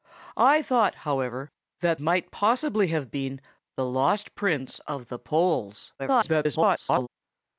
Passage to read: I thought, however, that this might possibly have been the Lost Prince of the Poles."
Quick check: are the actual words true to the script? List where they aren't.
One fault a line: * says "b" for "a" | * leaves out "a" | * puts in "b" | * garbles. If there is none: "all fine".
* leaves out "this"
* garbles